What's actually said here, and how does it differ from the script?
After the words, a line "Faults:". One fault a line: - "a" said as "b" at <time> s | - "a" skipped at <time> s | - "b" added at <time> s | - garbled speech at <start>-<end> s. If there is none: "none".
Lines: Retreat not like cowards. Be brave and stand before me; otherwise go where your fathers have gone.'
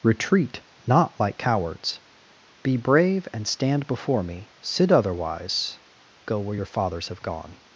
Retreat not like cowards. Be brave and stand before me; sit otherwise go where your fathers have gone.'
Faults:
- "sit" added at 4.6 s